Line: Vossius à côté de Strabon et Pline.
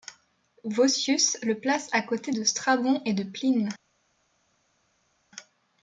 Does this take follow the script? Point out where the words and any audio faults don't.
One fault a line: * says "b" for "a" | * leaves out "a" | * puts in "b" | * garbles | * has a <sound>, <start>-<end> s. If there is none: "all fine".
* puts in "le place"
* puts in "de"